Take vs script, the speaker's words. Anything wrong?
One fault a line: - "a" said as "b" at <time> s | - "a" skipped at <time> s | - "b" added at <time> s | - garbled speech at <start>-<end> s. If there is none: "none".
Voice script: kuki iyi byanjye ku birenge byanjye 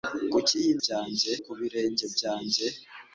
none